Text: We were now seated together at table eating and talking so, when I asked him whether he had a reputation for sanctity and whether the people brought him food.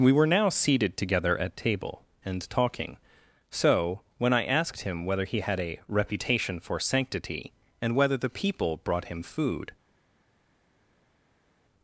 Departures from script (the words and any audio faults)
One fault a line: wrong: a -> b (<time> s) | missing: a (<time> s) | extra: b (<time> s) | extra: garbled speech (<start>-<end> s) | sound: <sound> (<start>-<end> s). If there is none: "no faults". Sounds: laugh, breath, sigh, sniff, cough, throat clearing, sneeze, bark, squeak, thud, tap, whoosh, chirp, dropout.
missing: eating (2.0 s)